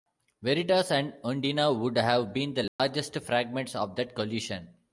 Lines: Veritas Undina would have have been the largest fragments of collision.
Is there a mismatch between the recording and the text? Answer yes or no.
yes